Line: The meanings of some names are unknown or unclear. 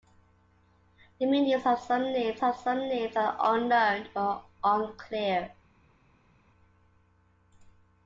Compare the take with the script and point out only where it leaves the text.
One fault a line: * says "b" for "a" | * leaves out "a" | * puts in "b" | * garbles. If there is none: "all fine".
* puts in "of some names"